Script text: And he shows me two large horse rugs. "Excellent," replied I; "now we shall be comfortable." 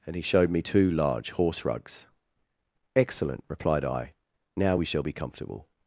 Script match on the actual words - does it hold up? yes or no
no